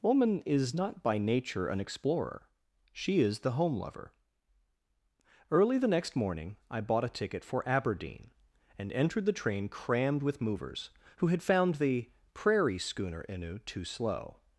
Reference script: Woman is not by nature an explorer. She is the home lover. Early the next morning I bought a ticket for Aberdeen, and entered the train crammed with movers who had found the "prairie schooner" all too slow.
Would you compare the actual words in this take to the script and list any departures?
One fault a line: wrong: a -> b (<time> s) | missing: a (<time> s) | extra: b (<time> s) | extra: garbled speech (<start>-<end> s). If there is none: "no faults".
wrong: all -> innu (13.3 s)